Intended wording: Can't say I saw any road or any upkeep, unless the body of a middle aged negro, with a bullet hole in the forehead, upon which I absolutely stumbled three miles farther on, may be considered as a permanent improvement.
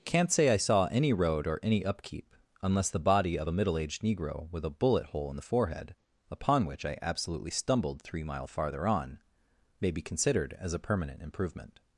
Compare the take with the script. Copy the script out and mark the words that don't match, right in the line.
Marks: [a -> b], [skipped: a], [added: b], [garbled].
Can't say I saw any road or any upkeep, unless the body of a middle aged negro, with a bullet hole in the forehead, upon which I absolutely stumbled three [miles -> mile] farther on, may be considered as a permanent improvement.